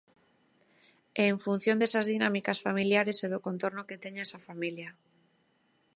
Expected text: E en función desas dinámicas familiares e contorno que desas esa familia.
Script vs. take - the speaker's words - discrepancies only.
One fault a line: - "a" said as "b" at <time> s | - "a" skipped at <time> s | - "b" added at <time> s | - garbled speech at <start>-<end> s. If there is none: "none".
- "do" added at 3.3 s
- "desas" said as "teña" at 4.0 s